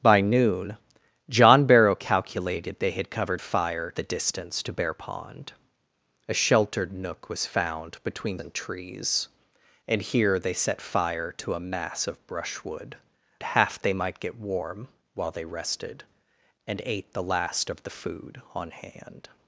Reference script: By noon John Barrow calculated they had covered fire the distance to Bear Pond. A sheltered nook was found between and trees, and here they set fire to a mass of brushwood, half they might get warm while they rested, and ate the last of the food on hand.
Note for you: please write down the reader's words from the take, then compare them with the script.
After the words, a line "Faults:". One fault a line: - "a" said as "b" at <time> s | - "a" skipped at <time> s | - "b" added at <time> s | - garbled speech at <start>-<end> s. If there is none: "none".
By noon John Barrow calculated they had covered fire the distance to Bear Pond. A sheltered nook was found between and trees, and here they set fire to a mass of brushwood, half they might get warm while they rested, and ate the last of the food on hand.
Faults:
none